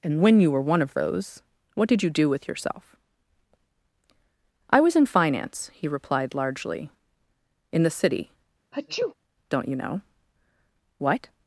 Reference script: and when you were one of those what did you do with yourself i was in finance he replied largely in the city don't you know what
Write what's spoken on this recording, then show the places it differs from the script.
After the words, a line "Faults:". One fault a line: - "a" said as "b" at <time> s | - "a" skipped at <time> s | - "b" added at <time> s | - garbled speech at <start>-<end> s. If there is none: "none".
and when you were one of those what did you do with yourself i was in finance he replied largely in the city don't you know what
Faults:
none